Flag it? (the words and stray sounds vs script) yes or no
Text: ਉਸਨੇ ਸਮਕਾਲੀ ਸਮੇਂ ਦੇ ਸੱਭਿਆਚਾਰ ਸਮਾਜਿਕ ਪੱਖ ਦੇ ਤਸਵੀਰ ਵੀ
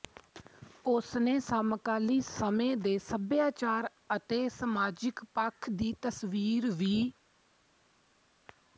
yes